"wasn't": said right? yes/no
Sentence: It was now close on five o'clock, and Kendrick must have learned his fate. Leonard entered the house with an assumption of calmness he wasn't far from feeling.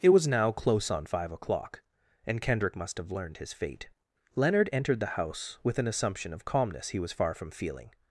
no